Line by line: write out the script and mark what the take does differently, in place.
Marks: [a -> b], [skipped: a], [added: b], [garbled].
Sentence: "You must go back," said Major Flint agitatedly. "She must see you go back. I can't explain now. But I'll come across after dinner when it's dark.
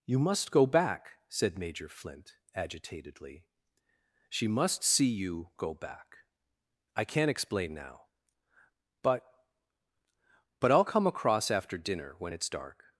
"You must go back," said Major Flint agitatedly. "She must see you go back. I can't explain now. But [added: But] I'll come across after dinner when it's dark.